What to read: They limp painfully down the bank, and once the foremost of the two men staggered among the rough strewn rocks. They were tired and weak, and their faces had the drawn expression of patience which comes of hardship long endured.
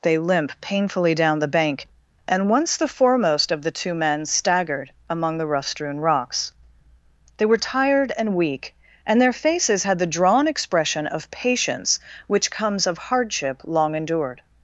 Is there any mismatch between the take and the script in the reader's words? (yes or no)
no